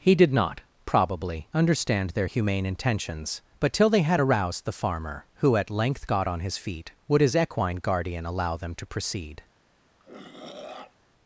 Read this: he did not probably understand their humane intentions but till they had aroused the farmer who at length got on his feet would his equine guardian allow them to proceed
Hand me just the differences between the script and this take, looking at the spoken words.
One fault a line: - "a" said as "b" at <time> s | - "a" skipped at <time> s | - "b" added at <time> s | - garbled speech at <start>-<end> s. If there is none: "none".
none